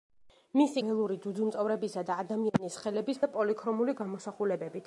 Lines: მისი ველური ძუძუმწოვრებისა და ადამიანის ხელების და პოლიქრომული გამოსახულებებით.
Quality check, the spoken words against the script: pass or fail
pass